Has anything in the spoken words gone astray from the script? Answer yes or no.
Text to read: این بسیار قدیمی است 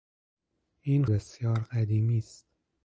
no